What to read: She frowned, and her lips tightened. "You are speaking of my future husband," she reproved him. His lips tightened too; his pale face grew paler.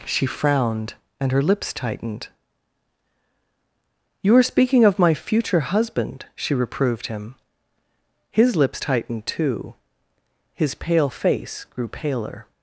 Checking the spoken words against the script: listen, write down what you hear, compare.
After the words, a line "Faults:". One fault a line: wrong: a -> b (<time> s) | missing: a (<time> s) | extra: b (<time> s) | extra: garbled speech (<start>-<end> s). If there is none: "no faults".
She frowned, and her lips tightened. "You are speaking of my future husband," she reproved him. His lips tightened too; his pale face grew paler.
Faults:
no faults